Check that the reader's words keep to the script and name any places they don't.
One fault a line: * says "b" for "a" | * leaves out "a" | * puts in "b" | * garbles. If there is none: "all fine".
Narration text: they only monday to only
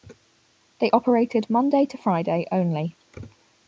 * says "operated" for "only"
* puts in "friday"